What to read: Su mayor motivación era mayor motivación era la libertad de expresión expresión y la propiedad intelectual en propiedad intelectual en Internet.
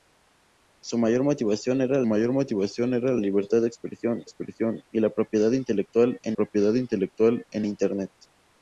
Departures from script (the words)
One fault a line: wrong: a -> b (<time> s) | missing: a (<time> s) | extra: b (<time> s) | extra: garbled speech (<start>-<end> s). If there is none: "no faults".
no faults